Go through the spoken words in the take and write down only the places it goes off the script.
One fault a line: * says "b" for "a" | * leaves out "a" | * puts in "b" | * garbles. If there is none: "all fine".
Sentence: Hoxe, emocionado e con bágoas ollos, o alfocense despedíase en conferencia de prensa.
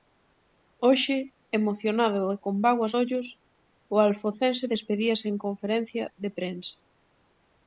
all fine